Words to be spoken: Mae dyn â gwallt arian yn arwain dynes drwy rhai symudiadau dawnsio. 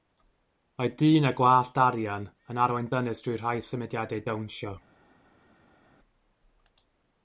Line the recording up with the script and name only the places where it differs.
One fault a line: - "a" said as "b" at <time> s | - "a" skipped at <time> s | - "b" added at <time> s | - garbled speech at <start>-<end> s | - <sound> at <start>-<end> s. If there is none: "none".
none